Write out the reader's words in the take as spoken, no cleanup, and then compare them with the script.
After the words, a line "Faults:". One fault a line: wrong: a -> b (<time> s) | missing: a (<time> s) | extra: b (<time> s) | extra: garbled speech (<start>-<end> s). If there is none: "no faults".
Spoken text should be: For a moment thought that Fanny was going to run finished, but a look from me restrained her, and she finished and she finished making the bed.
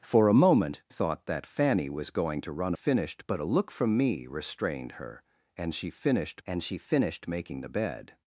For a moment thought that Fanny was going to run finished, but a look from me restrained her, and she finished and she finished making the bed.
Faults:
no faults